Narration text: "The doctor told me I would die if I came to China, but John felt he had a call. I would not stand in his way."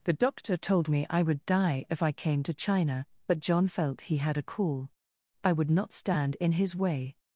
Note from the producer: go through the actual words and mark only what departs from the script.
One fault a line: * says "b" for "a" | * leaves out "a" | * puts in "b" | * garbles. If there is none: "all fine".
all fine